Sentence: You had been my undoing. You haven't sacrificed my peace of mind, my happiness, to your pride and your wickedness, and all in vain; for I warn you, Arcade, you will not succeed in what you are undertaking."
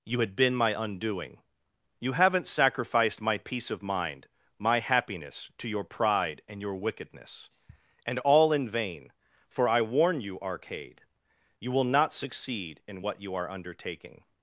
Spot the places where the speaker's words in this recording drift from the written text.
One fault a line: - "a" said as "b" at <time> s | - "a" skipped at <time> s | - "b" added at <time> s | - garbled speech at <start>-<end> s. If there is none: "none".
none